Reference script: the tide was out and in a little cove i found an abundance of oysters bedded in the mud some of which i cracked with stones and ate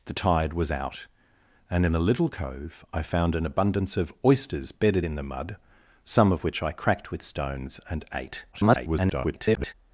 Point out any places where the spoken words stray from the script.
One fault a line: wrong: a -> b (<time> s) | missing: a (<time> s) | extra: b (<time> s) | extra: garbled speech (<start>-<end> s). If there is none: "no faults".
extra: garbled speech (8.5-9.7 s)